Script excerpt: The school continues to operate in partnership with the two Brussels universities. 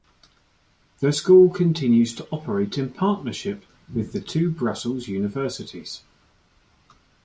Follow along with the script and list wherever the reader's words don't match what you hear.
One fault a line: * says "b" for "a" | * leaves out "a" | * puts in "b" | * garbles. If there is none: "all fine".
all fine